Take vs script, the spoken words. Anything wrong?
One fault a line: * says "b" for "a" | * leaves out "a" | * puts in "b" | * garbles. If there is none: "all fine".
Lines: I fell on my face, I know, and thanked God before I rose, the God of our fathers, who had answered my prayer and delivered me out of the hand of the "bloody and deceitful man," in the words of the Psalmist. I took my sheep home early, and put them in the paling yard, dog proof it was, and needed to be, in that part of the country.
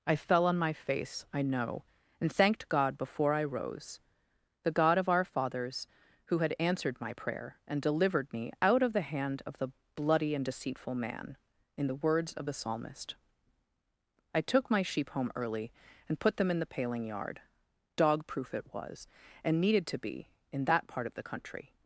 all fine